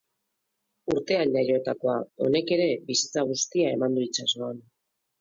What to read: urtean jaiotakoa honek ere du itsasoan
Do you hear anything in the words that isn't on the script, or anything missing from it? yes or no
yes